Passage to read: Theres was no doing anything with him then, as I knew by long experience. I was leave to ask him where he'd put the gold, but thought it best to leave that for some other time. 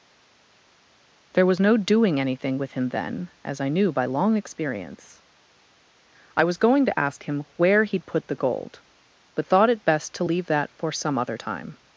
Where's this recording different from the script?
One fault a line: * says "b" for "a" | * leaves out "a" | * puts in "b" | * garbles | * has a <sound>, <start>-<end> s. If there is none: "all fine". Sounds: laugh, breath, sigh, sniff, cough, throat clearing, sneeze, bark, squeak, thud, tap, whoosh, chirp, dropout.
* says "There" for "Theres"
* says "going" for "leave"